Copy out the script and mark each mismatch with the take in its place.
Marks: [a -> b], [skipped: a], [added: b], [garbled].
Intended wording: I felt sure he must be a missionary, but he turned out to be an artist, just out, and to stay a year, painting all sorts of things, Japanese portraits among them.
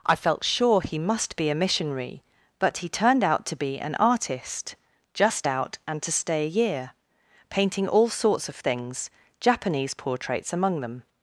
I felt sure he must be a missionary, but he turned out to be an artist, just out, and to stay a year, painting all sorts of things, Japanese portraits among them.